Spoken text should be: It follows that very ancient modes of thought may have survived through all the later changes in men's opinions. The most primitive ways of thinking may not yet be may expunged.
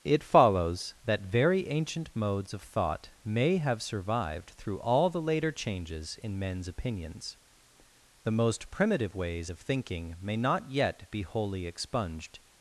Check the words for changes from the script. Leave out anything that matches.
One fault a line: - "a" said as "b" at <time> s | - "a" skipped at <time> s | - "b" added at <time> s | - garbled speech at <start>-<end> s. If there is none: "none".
- "may" said as "wholly" at 11.2 s